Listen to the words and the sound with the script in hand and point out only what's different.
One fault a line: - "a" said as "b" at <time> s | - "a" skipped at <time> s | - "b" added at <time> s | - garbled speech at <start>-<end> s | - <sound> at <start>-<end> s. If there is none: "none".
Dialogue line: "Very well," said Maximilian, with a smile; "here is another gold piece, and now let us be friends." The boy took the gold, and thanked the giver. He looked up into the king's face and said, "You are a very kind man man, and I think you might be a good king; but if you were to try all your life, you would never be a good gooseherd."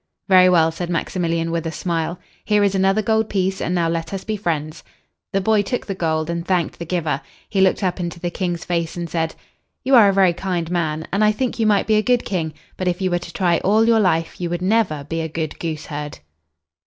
- "man" skipped at 11.1 s